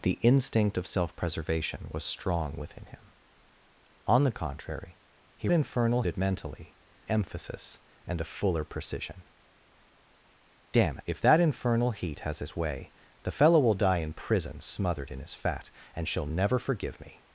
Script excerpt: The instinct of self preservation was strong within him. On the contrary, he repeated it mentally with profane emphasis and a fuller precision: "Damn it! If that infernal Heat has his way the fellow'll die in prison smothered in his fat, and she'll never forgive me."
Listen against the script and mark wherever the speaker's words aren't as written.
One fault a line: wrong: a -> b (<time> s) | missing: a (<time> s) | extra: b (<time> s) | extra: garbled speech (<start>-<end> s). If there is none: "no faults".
wrong: repeated -> infernal (5.5 s)
missing: with profane (6.8 s)
missing: it (11.0 s)